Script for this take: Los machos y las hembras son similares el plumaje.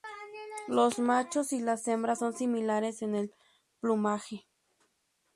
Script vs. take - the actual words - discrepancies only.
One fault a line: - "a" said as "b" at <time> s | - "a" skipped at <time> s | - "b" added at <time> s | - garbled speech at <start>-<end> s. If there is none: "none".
- "en" added at 3.0 s